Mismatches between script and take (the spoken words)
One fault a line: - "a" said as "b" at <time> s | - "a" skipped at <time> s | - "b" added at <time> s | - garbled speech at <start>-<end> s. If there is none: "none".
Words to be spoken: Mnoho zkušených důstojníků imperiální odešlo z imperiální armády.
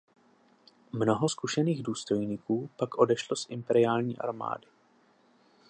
- "imperiální" said as "pak" at 2.8 s